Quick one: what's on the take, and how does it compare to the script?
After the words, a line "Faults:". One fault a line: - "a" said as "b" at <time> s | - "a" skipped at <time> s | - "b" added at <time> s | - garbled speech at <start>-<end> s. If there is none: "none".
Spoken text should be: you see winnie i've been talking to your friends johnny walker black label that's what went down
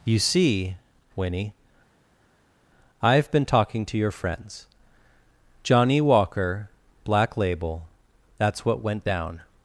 you see winnie i've been talking to your friends johnny walker black label that's what went down
Faults:
none